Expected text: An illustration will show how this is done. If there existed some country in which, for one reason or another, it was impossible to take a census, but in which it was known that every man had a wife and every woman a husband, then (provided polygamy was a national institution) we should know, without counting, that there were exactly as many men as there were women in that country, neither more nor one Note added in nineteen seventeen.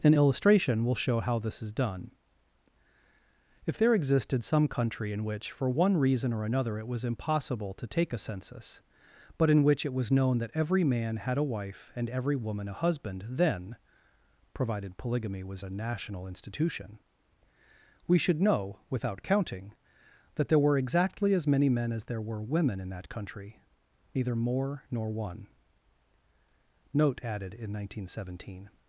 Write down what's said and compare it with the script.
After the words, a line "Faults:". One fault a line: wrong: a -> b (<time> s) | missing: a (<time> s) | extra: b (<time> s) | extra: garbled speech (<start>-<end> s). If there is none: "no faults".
An illustration will show how this is done. If there existed some country in which, for one reason or another, it was impossible to take a census, but in which it was known that every man had a wife and every woman a husband, then (provided polygamy was a national institution) we should know, without counting, that there were exactly as many men as there were women in that country, neither more nor one Note added in nineteen seventeen.
Faults:
no faults